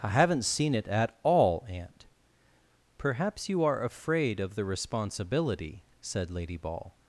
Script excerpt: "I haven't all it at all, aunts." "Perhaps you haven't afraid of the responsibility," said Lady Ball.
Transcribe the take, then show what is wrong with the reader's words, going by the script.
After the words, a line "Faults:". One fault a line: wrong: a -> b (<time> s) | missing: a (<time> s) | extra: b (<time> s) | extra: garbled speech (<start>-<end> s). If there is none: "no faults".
"I haven't seen it at all, aunt." "Perhaps you are afraid of the responsibility," said Lady Ball.
Faults:
wrong: all -> seen (0.4 s)
wrong: aunts -> aunt (1.7 s)
wrong: haven't -> are (3.6 s)